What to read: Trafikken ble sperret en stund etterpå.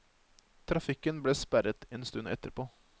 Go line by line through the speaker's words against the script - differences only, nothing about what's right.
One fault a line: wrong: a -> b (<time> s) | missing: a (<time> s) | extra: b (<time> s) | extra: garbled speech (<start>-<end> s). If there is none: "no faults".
no faults